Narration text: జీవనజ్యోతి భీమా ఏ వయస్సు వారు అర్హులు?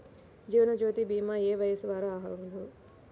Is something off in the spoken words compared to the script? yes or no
no